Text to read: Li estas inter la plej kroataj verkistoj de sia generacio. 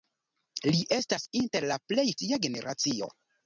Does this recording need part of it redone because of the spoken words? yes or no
yes